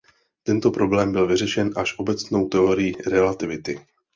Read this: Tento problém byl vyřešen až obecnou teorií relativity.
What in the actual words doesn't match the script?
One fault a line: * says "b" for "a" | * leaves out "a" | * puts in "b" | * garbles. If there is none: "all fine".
all fine